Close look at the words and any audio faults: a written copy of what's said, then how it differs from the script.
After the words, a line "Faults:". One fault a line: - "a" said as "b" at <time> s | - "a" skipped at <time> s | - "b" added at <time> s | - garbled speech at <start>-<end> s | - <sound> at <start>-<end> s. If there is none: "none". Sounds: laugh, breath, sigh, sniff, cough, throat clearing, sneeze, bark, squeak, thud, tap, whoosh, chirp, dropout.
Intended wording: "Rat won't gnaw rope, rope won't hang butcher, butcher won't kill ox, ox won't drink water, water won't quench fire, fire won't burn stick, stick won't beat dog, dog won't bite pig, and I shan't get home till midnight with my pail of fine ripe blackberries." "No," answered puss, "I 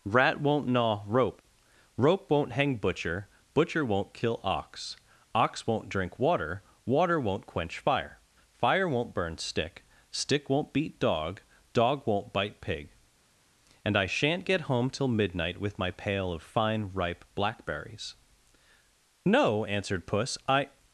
"Rat won't gnaw rope, rope won't hang butcher, butcher won't kill ox, ox won't drink water, water won't quench fire, fire won't burn stick, stick won't beat dog, dog won't bite pig, and I shan't get home till midnight with my pail of fine ripe blackberries." "No," answered puss, "I
Faults:
none